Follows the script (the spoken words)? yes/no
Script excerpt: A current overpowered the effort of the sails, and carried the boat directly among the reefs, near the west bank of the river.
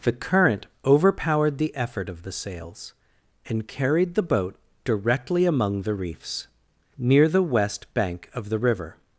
no